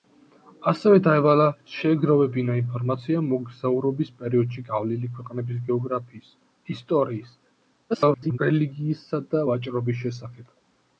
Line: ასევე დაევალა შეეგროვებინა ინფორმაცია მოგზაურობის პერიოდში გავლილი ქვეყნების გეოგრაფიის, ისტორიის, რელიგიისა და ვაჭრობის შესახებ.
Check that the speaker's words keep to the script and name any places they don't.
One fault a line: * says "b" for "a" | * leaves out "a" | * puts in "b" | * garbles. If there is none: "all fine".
* garbles